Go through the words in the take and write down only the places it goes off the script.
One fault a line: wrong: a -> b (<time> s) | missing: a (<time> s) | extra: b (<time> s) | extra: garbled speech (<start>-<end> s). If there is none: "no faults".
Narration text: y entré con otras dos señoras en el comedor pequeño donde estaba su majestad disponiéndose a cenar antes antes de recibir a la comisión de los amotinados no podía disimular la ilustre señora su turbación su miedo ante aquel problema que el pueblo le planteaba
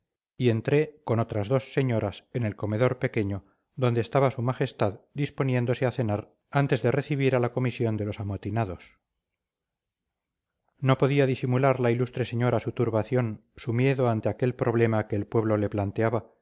missing: antes (6.8 s)